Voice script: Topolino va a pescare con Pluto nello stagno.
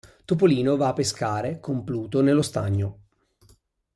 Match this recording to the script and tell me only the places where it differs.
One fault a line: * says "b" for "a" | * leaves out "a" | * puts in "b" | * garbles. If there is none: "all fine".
all fine